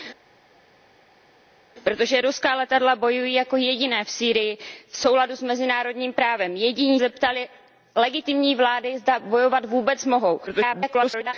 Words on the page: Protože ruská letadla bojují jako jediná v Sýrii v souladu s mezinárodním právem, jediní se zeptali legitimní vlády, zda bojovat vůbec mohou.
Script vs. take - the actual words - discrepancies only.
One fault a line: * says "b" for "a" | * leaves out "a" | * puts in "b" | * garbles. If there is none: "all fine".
* leaves out "se"
* garbles